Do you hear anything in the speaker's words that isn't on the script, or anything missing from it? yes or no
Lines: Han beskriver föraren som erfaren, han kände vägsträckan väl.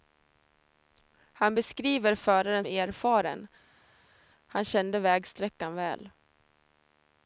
yes